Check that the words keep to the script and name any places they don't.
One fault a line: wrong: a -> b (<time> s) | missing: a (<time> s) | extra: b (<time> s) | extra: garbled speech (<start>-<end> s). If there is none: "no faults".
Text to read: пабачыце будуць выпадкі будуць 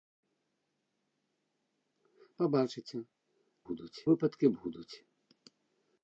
no faults